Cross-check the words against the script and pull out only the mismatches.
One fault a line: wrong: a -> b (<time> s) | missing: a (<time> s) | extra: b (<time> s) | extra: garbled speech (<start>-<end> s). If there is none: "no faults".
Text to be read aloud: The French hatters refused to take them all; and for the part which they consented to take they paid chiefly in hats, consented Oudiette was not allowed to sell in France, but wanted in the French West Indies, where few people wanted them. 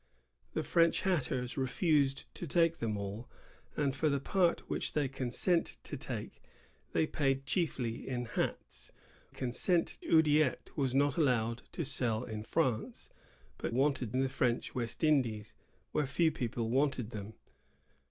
no faults